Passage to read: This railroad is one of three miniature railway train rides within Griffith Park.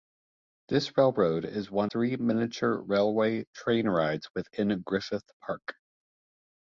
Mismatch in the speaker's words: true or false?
true